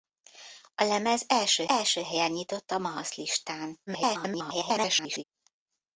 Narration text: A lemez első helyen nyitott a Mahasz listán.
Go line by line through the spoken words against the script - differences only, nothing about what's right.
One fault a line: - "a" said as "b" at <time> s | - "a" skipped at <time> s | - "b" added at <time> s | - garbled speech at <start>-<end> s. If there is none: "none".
- "első" added at 1.7 s
- garbled speech at 3.9-5.2 s